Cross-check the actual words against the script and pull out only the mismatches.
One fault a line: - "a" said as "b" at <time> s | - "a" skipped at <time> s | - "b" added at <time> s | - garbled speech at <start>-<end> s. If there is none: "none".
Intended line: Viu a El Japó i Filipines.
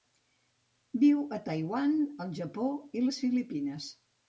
- "Taiwan" added at 1.5 s
- "les" added at 3.0 s